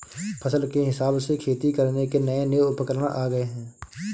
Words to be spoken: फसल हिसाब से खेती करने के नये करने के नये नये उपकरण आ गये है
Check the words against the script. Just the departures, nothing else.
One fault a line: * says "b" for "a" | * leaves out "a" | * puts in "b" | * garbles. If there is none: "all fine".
* puts in "के"
* leaves out "करने के नये"